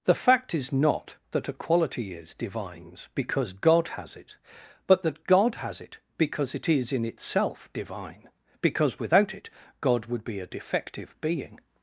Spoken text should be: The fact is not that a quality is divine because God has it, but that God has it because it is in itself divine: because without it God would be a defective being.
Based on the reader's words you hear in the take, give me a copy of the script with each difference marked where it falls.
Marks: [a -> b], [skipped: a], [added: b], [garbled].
The fact is not that a quality is [divine -> divines] because God has it, but that God has it because it is in itself divine: because without it God would be a defective being.